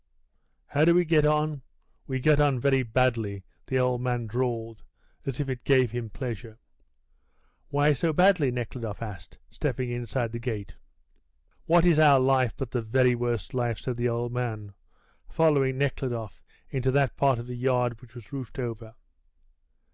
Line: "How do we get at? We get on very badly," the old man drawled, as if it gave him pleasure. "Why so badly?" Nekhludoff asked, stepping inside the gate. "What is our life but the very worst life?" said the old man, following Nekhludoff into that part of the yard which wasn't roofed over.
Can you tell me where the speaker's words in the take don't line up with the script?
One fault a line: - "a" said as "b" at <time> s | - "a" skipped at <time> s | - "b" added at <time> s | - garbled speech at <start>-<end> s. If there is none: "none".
- "at" said as "on" at 1.3 s
- "wasn't" said as "was" at 18.1 s